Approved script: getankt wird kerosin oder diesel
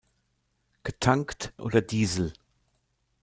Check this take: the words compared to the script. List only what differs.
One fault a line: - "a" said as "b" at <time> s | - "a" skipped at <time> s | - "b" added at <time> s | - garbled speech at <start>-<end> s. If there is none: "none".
- "wird kerosin" skipped at 1.5 s